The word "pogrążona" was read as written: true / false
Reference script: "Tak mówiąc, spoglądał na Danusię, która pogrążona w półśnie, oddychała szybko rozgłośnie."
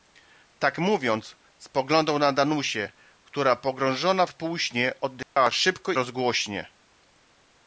true